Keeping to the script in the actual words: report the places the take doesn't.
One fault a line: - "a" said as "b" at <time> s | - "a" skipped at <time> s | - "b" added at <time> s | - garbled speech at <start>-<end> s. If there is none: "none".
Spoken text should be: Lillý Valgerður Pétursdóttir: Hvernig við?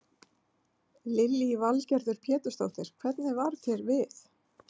- "varð þér" added at 3.4 s